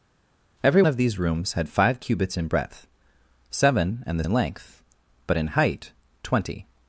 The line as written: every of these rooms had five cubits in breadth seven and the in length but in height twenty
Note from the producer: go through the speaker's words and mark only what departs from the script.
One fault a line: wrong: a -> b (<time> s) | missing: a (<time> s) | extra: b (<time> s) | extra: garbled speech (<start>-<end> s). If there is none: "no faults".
no faults